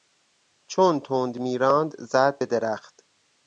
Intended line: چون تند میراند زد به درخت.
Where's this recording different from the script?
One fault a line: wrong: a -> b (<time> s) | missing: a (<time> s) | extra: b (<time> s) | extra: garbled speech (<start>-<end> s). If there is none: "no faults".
no faults